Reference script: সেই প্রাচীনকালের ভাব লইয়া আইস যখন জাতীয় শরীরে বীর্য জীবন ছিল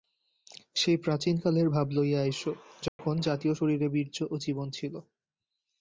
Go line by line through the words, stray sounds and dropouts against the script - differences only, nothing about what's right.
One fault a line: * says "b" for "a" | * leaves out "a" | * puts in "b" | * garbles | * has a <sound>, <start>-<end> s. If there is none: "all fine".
* has a dropout, 2.9-3.0 s
* puts in "ও"